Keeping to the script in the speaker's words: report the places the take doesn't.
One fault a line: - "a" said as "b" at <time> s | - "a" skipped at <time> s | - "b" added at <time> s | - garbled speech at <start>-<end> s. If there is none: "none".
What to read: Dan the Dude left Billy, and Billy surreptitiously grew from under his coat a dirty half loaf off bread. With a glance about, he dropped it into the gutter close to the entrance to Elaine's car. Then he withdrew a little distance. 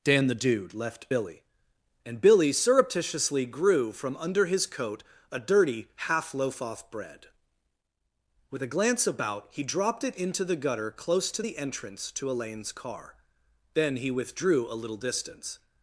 none